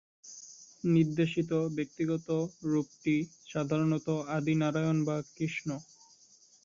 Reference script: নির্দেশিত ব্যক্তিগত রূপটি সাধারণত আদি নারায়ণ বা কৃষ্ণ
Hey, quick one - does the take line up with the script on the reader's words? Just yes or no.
yes